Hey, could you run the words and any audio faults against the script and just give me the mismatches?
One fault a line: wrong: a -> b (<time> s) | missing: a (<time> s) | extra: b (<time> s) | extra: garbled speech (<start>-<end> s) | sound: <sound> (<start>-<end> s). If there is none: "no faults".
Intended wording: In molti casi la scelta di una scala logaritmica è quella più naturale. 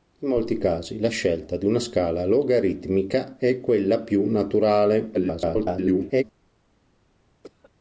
extra: garbled speech (5.1-6.2 s)
sound: cough (7.4-7.7 s)